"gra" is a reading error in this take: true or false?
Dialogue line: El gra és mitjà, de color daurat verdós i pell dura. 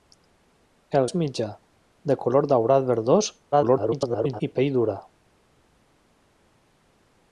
true